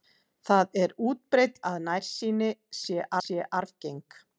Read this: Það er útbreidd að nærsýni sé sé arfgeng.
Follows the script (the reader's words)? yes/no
yes